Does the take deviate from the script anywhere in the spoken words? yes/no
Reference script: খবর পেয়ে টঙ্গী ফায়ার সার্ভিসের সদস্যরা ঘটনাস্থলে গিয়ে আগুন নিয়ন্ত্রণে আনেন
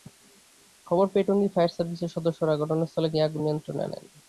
no